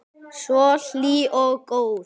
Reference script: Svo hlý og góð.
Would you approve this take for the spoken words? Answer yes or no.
yes